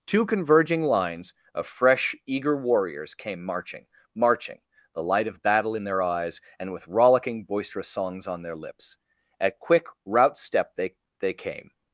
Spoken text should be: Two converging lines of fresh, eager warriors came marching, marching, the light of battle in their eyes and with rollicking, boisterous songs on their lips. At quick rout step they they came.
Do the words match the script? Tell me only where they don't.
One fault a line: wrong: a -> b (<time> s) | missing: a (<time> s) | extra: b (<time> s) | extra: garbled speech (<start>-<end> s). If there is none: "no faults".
no faults